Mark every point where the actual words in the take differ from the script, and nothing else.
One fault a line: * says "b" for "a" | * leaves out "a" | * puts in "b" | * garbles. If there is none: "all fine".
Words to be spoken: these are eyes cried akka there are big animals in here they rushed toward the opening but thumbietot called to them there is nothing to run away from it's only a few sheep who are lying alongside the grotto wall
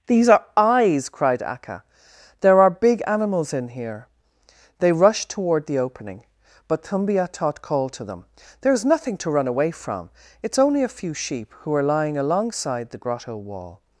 all fine